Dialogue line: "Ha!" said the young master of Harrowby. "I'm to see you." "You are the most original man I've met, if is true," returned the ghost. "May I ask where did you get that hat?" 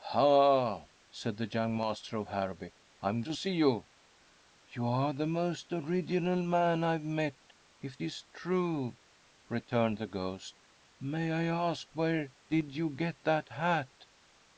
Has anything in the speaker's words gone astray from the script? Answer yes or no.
no